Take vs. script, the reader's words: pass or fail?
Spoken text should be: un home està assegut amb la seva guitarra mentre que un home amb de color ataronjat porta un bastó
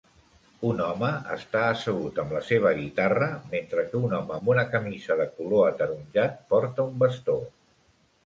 fail